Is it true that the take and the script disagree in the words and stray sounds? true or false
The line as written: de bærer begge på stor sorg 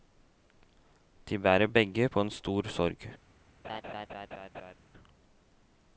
true